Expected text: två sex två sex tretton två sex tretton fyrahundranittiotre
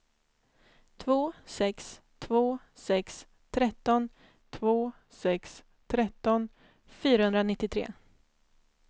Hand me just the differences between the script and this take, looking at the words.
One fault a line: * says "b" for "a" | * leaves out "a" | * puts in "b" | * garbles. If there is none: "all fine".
all fine